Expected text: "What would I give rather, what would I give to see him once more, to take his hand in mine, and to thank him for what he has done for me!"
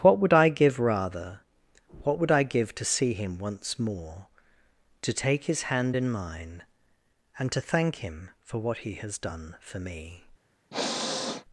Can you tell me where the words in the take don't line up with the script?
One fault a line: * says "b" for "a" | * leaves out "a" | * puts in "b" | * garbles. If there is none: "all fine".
all fine